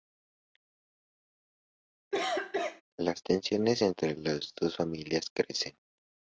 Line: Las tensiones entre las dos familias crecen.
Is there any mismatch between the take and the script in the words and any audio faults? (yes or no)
yes